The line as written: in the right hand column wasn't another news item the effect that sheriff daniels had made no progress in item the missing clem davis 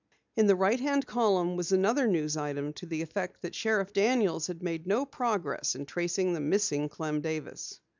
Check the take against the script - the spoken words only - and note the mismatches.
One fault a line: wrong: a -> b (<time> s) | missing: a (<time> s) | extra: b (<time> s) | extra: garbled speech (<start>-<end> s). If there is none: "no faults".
wrong: wasn't -> was (1.6 s)
extra: to (2.7 s)
wrong: item -> tracing (5.8 s)